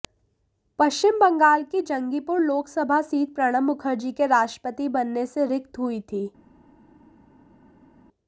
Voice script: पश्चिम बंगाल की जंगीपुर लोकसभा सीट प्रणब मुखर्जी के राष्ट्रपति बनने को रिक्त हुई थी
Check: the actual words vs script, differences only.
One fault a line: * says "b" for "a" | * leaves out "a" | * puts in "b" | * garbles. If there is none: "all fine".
* says "से" for "को"